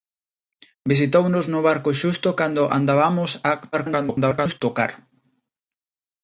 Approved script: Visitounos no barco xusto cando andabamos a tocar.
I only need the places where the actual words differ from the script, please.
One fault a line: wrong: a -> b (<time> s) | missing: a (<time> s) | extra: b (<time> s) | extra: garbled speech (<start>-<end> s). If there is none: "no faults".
extra: garbled speech (3.7-4.6 s)